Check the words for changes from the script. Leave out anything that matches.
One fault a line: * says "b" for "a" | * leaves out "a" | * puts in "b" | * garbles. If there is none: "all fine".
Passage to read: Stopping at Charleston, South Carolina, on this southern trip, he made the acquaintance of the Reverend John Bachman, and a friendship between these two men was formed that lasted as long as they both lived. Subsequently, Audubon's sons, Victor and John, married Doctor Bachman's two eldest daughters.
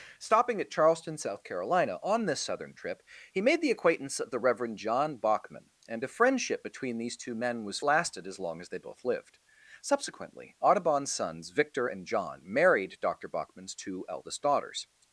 * leaves out "formed that"